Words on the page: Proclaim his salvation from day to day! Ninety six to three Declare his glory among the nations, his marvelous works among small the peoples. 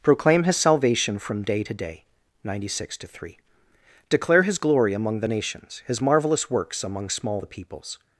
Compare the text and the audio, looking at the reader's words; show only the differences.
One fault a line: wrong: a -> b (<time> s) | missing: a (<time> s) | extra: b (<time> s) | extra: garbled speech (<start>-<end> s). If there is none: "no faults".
no faults